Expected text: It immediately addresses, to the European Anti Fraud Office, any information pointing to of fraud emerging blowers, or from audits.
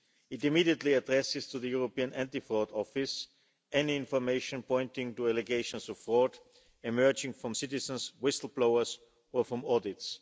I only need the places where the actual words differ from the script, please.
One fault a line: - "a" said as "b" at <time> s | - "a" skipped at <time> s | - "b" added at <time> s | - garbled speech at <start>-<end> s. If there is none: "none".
- "allegations" added at 5.3 s
- "from citizens whistle" added at 7.3 s